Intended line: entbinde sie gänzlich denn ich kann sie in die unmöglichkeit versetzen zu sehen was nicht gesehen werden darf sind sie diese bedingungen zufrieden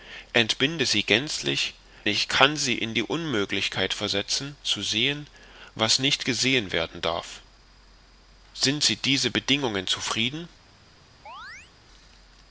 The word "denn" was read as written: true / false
false